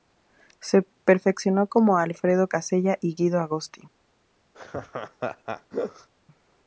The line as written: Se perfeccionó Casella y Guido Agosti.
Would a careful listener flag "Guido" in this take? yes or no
no